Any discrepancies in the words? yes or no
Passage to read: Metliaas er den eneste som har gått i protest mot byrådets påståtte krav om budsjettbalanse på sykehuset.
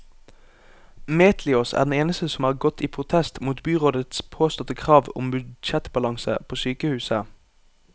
no